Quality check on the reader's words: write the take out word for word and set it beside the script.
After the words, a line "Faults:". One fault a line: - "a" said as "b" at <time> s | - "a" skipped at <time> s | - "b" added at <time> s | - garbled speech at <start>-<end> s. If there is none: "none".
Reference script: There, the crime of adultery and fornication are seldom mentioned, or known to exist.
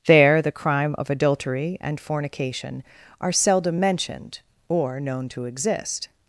There, the crime of adultery and fornication are seldom mentioned, or known to exist.
Faults:
none